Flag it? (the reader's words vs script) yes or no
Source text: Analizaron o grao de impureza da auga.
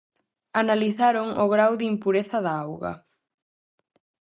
no